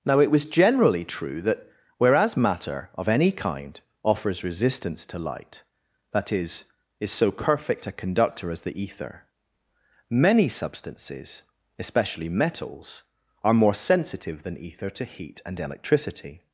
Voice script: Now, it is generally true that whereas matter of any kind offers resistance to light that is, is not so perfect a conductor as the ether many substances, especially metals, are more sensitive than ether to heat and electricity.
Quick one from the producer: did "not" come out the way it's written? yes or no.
no